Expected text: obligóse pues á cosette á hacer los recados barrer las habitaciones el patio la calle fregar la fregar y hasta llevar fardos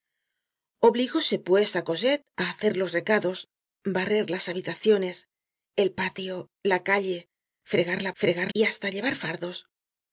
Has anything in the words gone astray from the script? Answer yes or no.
no